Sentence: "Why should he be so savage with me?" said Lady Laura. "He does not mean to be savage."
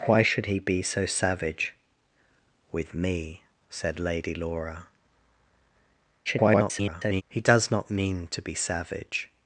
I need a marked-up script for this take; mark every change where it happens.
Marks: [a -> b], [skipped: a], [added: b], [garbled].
"Why should he be so savage with me?" said Lady Laura. [garbled] "He does not mean to be savage."